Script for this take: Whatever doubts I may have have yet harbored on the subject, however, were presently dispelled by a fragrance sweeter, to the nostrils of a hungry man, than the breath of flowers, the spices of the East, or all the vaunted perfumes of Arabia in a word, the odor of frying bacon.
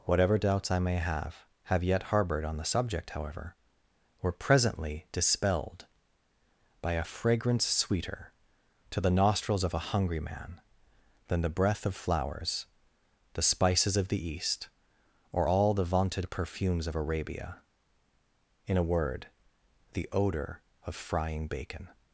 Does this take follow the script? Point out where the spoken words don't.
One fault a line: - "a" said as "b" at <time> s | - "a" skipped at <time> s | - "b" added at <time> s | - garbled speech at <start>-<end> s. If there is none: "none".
none